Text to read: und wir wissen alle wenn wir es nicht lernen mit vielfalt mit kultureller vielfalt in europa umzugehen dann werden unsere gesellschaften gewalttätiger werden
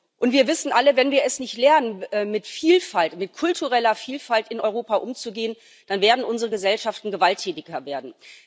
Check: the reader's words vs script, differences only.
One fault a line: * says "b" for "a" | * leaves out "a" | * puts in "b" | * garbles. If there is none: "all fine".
all fine